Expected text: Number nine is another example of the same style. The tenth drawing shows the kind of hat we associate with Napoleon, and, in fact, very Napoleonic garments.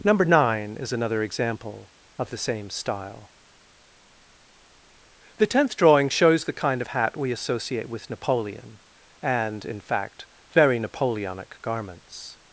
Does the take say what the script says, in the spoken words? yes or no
yes